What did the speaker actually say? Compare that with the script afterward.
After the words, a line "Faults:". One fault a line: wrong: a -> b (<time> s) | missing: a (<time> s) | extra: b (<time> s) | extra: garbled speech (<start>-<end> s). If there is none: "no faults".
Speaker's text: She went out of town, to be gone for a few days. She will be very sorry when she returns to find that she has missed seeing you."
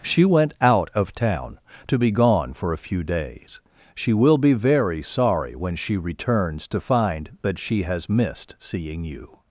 She went out of town, to be gone for a few days. She will be very sorry when she returns to find that she has missed seeing you."
Faults:
no faults